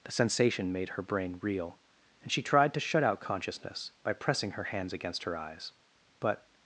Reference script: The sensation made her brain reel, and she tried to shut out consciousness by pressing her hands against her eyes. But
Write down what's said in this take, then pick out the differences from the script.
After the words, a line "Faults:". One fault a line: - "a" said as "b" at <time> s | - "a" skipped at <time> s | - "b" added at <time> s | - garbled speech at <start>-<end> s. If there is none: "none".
The sensation made her brain reel, and she tried to shut out consciousness by pressing her hands against her eyes. But
Faults:
none